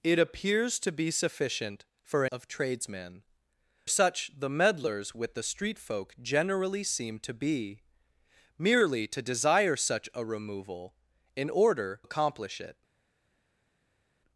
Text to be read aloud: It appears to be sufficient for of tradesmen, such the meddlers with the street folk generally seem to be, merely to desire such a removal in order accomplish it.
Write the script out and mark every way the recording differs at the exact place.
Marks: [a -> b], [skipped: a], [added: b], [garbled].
It appears to be sufficient for of tradesmen, such the meddlers with the street folk generally seem to be, merely to desire such a removal in order accomplish it.